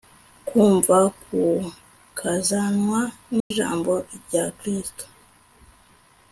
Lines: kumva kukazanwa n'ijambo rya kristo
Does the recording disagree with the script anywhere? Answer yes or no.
no